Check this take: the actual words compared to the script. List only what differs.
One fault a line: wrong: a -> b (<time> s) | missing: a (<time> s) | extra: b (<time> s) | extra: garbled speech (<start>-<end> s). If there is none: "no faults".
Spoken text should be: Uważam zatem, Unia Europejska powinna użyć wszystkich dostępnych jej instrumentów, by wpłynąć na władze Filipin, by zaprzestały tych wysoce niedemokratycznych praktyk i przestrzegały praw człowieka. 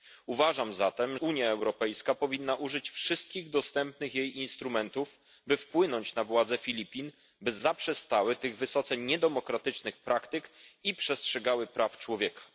no faults